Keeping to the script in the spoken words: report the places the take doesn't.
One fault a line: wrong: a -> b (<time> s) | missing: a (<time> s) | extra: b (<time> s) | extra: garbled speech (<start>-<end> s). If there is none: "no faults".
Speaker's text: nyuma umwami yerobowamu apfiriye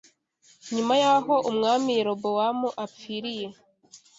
extra: y'aho (1.0 s)